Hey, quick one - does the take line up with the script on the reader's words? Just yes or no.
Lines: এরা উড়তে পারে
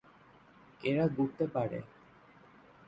yes